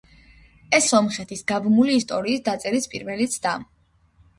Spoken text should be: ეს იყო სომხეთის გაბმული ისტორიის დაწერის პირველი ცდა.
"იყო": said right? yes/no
no